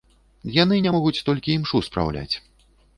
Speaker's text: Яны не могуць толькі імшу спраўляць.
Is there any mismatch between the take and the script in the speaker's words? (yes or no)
no